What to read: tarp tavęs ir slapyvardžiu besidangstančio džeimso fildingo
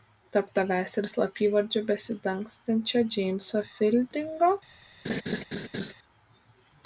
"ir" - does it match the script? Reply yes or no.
yes